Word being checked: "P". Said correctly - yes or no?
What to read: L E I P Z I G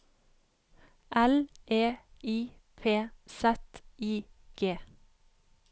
yes